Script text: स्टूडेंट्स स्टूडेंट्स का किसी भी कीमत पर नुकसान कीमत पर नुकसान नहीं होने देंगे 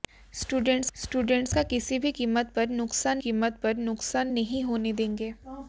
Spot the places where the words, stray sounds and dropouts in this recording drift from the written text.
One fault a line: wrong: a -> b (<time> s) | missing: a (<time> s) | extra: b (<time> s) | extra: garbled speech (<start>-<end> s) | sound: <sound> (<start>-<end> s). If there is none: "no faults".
no faults